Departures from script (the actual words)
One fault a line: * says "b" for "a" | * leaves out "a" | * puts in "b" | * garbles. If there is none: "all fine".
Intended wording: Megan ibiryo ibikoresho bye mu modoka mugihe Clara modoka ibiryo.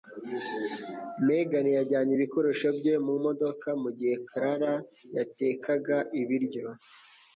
* says "yajyanye" for "ibiryo"
* says "yatekaga" for "modoka"